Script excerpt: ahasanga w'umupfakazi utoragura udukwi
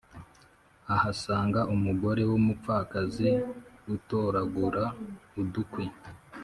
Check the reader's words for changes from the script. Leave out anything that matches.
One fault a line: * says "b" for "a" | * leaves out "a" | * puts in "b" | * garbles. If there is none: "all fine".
* puts in "umugore"